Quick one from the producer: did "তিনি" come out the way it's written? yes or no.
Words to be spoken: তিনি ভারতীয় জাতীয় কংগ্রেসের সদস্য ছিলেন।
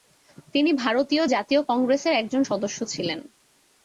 yes